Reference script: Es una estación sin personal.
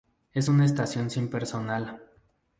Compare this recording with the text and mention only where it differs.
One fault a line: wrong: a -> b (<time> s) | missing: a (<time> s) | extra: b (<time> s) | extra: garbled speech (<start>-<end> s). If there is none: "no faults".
no faults